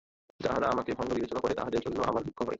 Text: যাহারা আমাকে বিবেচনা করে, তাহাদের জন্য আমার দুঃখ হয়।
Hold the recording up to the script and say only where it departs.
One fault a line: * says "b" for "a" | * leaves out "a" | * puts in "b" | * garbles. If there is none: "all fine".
* puts in "ভণ্ড"